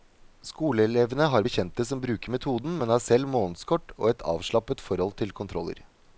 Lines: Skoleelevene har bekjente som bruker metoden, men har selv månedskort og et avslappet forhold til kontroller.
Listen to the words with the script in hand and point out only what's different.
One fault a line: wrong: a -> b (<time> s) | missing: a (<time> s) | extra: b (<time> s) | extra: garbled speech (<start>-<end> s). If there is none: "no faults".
no faults